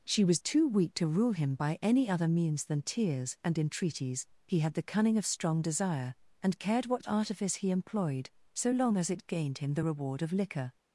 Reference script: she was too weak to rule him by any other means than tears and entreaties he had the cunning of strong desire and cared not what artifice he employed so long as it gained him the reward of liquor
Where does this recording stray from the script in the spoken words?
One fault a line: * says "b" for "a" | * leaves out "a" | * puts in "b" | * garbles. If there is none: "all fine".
* leaves out "not"